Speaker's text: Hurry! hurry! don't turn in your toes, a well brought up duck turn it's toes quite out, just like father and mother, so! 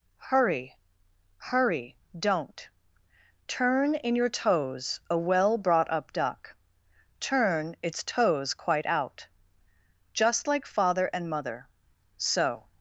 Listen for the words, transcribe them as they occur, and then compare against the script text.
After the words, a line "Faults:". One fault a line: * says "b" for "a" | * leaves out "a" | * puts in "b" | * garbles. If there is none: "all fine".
Hurry! hurry! don't turn in your toes, a well brought up duck turn it's toes quite out, just like father and mother, so!
Faults:
all fine